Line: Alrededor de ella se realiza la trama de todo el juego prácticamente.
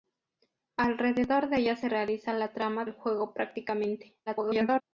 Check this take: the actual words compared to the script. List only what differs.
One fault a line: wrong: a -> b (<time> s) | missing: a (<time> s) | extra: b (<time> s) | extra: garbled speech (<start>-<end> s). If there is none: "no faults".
missing: de todo (2.9 s)
extra: garbled speech (4.3-4.8 s)